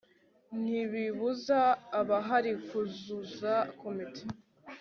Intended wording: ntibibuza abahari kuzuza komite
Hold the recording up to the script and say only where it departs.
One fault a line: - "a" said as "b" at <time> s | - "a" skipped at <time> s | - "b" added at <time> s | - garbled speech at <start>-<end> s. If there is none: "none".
none